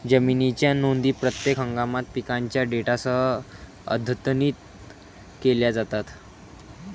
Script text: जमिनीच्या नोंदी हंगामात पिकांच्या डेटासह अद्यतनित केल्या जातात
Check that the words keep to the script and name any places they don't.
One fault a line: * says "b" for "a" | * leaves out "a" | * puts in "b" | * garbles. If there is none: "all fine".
* puts in "प्रत्येक"